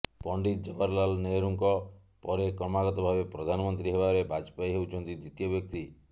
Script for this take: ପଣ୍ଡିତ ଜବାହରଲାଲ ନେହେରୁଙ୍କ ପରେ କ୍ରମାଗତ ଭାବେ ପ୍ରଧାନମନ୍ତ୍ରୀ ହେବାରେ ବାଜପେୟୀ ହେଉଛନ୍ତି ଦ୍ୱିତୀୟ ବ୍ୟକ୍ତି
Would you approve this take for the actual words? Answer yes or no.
yes